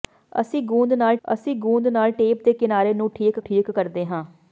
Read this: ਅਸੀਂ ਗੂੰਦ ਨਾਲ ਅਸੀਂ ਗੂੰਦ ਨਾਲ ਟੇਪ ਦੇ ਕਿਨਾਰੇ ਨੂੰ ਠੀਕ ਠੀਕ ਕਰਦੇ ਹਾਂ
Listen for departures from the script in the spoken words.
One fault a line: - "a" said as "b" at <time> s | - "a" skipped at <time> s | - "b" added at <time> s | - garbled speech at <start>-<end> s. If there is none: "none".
none